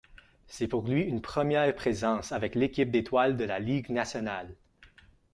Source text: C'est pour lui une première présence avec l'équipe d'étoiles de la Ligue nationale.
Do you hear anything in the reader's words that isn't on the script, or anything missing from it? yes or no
no